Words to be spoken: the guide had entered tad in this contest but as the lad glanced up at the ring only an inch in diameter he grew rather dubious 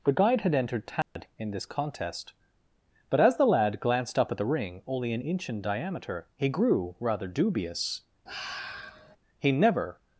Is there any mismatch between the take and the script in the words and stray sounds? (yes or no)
yes